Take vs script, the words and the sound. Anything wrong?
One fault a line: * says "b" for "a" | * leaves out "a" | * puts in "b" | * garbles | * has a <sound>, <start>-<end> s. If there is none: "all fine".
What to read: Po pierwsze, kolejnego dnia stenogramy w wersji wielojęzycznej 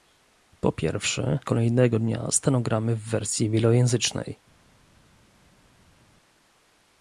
all fine